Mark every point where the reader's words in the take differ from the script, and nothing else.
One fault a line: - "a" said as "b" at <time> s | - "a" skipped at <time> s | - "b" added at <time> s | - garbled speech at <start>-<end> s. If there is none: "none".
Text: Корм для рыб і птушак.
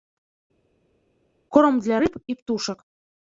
none